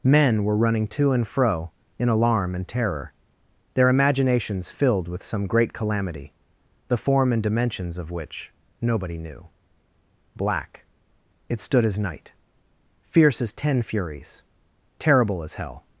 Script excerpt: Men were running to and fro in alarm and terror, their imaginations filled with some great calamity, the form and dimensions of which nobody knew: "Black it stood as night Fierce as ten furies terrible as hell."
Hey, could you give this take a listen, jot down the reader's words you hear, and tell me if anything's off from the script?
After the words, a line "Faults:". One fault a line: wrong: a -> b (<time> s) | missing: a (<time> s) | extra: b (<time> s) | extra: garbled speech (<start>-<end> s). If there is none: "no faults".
Men were running to and fro in alarm and terror, their imaginations filled with some great calamity, the form and dimensions of which nobody knew: "Black it stood as night Fierce as ten furies terrible as hell."
Faults:
no faults